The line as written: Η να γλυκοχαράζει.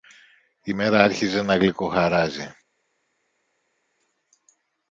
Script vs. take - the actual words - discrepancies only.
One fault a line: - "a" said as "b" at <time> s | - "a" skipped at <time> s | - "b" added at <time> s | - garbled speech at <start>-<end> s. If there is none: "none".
- "μέρα άρχιζε" added at 0.7 s